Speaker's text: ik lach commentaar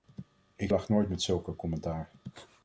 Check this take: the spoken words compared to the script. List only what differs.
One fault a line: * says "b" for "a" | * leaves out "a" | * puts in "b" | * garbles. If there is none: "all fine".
* puts in "nooit met zulke"